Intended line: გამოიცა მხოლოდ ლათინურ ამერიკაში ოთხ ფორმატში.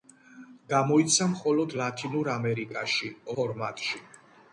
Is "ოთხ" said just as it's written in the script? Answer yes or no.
no